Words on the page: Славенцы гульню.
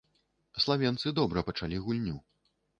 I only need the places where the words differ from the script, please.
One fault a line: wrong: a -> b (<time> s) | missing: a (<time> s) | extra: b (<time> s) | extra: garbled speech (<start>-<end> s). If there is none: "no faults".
extra: добра пачалі (1.2 s)